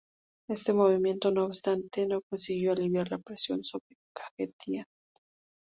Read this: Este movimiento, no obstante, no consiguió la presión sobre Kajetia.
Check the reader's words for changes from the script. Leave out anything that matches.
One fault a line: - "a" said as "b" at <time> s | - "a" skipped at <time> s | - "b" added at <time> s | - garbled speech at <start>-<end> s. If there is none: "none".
- "aliviar" added at 2.7 s